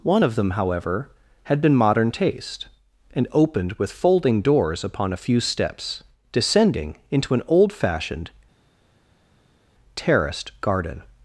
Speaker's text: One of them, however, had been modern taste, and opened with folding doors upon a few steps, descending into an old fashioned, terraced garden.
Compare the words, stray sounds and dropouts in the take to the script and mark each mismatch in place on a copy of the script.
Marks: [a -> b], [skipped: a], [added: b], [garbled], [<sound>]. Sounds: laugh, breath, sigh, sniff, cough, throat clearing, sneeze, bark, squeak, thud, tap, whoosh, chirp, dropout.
One of them, however, had been modern taste, and opened with folding doors upon a few steps, descending into an old fashioned, terraced garden.